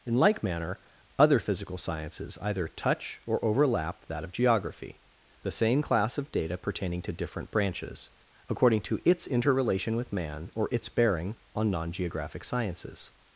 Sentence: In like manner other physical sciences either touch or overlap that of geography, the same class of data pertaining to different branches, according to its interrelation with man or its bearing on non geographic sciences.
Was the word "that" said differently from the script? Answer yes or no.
no